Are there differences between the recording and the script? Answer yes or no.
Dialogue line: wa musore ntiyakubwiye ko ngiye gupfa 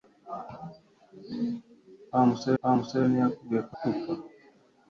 yes